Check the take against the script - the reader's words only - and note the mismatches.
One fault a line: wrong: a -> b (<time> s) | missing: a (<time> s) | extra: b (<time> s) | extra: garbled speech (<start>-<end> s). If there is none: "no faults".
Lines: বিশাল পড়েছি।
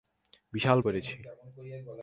no faults